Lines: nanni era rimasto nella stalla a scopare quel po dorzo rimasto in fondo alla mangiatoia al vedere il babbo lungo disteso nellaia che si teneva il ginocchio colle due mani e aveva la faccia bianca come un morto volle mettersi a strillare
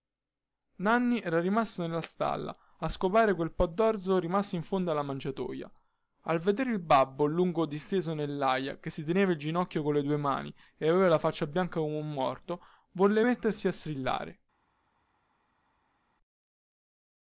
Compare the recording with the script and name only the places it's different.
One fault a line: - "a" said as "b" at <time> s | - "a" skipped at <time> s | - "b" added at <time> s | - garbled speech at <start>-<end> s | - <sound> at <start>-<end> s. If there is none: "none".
none